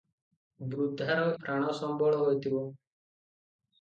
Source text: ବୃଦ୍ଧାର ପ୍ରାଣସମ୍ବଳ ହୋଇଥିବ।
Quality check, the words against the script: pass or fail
pass